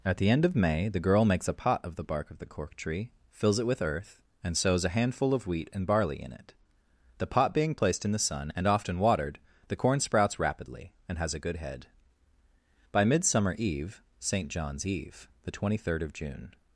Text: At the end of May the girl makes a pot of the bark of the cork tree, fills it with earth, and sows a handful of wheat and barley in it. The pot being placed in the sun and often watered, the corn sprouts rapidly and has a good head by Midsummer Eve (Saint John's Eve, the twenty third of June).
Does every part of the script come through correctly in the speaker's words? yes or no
yes